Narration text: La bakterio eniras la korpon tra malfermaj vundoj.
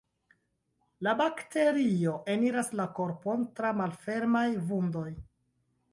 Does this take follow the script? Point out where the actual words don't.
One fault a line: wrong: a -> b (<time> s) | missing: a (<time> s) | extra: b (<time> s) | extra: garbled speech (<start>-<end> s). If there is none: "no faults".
no faults